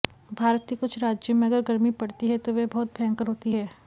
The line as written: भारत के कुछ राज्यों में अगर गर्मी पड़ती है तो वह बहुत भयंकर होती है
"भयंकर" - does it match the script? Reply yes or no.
yes